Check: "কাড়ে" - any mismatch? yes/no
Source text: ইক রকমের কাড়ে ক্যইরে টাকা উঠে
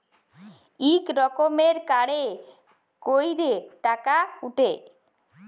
no